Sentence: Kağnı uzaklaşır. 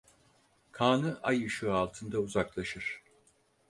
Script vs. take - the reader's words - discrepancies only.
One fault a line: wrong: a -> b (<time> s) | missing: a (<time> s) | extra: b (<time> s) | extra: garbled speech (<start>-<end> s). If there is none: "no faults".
extra: ay ışığı altında (1.2 s)